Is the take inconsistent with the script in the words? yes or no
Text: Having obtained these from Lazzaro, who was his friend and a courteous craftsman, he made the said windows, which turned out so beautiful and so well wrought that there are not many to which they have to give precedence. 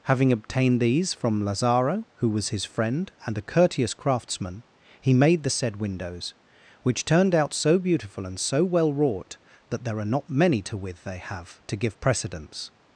yes